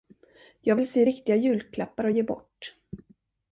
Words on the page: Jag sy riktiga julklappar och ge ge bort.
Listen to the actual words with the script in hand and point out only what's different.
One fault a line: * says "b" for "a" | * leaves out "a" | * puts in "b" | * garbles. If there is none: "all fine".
* puts in "vill"
* leaves out "ge"